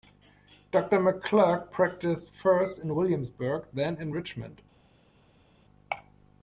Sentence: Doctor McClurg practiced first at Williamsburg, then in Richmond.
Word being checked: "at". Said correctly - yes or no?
no